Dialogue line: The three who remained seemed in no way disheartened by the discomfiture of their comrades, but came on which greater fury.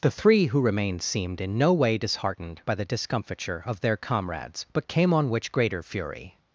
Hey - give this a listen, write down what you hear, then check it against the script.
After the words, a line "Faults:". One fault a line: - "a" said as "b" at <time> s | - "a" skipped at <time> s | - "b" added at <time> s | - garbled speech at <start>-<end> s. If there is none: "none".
The three who remained seemed in no way disheartened by the discomfiture of their comrades, but came on which greater fury.
Faults:
none